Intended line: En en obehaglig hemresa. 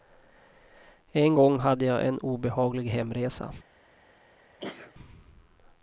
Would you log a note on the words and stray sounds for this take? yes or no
yes